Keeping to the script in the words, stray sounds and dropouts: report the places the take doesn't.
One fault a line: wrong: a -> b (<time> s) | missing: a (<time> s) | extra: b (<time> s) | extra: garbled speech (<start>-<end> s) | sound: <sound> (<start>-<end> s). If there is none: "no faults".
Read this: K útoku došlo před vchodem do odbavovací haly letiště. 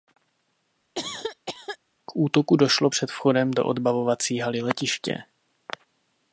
sound: cough (0.9-1.8 s)